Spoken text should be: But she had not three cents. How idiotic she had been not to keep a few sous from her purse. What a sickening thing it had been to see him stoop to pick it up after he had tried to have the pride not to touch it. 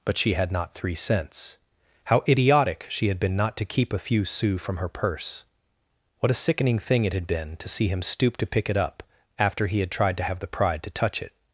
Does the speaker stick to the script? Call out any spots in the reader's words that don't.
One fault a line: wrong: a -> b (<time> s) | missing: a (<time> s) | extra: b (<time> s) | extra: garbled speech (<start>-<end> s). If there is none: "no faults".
missing: not (10.8 s)